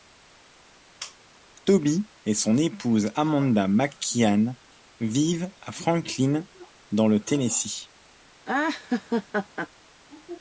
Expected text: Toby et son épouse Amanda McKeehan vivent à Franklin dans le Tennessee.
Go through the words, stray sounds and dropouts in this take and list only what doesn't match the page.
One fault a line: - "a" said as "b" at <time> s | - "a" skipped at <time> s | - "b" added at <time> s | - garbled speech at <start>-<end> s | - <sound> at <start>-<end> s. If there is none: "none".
- laugh at 8.5-9.7 s